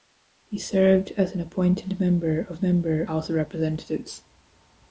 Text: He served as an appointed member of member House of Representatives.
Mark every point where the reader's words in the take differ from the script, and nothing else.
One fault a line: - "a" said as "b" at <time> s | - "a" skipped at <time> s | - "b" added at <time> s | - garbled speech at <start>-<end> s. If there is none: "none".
none